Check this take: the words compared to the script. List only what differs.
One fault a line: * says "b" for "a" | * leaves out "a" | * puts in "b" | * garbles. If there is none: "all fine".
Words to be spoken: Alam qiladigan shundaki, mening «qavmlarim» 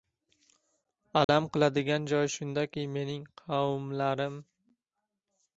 * puts in "joyi"